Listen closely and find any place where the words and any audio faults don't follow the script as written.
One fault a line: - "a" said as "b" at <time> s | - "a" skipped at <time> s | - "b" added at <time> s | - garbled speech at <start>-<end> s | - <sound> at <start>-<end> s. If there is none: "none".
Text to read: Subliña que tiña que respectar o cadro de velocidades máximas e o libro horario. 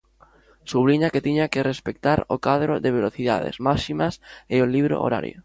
none